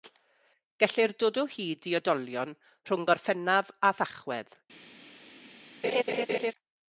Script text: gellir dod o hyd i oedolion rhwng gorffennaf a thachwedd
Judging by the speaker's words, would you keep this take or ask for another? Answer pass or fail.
pass